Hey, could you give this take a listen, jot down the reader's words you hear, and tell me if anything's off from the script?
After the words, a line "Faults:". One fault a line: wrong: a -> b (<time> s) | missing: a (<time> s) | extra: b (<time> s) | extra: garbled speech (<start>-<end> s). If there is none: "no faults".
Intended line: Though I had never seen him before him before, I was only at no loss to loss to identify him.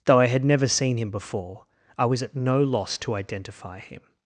Though I had never seen him before, I was at no loss to identify him.
Faults:
missing: him before (1.6 s)
missing: only (2.2 s)
missing: loss to (3.1 s)